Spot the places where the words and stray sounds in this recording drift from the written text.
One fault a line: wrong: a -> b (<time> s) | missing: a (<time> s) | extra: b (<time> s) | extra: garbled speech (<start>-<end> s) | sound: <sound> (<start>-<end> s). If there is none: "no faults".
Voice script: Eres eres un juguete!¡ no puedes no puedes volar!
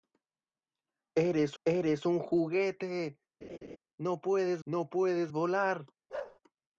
sound: laugh (3.4-3.8 s)
sound: bark (6.1-6.4 s)